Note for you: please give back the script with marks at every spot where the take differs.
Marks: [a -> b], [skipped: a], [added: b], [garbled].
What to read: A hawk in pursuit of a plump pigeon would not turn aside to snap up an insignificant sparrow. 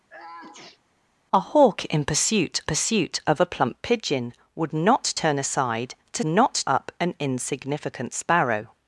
A hawk in pursuit [added: pursuit] of a plump pigeon would not turn aside to [snap -> not] up an insignificant sparrow.